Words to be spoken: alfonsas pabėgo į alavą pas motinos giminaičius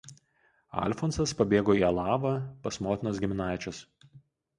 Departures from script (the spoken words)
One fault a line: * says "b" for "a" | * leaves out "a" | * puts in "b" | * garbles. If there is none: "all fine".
all fine